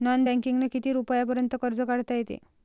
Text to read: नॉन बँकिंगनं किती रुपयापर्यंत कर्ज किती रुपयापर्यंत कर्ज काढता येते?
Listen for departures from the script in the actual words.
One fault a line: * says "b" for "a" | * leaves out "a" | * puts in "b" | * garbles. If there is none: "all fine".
* leaves out "किती रुपयापर्यंत कर्ज"